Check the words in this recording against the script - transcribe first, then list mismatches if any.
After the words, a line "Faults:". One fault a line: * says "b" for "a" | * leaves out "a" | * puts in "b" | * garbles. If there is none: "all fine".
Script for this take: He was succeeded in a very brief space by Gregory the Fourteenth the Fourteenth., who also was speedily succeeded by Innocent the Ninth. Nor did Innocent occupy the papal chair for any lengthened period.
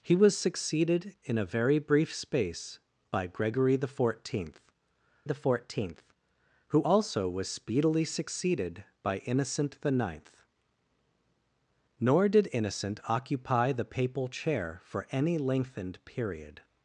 He was succeeded in a very brief space by Gregory the Fourteenth the Fourteenth., who also was speedily succeeded by Innocent the Ninth. Nor did Innocent occupy the papal chair for any lengthened period.
Faults:
all fine